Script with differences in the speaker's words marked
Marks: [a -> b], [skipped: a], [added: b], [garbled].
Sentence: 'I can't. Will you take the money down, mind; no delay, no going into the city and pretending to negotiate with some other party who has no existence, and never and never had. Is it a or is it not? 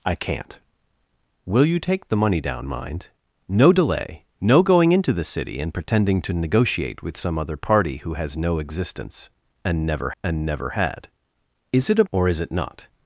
'I can't. Will you take the money down, mind; no delay, no going into the city and pretending to negotiate with some other party who has no existence, and never and never had. Is it a or is it not?